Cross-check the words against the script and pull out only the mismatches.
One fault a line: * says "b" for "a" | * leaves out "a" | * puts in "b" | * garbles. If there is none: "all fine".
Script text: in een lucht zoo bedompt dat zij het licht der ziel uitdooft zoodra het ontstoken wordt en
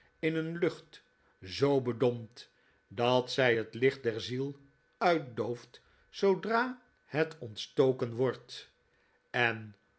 all fine